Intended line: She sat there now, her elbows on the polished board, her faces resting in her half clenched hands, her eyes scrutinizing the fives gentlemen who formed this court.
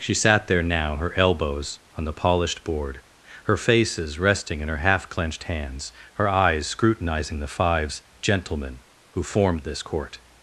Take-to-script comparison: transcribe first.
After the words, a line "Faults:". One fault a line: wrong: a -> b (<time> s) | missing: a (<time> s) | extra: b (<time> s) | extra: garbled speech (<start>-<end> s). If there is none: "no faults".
She sat there now, her elbows on the polished board, her faces resting in her half clenched hands, her eyes scrutinizing the fives gentlemen who formed this court.
Faults:
no faults